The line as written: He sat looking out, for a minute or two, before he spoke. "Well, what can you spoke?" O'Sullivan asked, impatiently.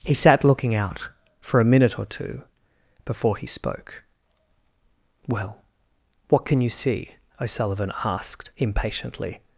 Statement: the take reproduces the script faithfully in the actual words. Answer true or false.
false